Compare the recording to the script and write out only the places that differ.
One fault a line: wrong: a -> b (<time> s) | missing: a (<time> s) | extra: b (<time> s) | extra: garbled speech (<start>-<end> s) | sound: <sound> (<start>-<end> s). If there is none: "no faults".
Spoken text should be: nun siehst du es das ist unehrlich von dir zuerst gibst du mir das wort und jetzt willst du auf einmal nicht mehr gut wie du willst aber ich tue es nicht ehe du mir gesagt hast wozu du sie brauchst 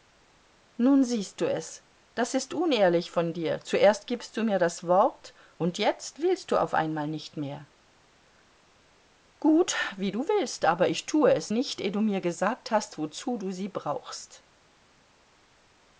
no faults